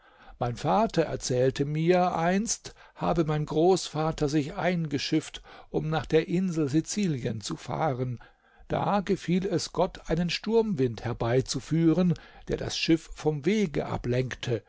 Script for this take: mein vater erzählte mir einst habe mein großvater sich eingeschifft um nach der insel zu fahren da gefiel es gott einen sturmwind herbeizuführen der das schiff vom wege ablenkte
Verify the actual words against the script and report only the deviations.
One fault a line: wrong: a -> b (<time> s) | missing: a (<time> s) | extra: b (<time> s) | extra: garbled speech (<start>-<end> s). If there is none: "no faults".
extra: sizilien (6.7 s)